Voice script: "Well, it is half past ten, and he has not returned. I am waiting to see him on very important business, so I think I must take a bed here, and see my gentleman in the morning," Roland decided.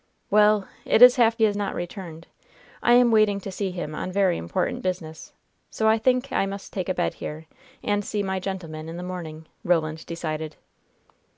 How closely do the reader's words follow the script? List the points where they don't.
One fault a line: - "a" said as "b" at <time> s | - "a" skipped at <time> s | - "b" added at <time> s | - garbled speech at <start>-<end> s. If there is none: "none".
- "past ten and" skipped at 1.4 s